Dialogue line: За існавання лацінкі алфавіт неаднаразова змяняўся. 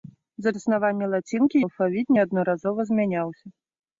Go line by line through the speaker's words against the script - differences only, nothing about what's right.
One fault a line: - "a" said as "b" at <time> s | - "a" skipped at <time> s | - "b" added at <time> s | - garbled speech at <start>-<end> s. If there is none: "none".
none